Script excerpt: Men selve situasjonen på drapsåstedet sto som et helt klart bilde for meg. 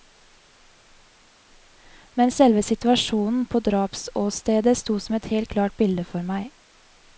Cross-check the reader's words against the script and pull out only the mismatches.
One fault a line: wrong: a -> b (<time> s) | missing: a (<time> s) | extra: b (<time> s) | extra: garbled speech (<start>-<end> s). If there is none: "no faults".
no faults